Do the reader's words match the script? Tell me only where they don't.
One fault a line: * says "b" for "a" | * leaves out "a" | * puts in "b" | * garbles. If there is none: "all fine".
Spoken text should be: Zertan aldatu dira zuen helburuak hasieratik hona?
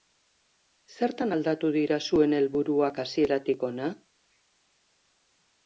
all fine